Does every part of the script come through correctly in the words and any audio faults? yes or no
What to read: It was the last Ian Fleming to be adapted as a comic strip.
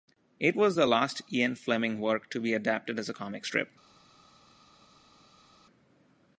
no